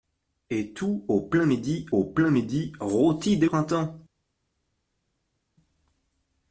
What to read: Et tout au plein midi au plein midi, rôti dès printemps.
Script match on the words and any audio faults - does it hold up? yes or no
yes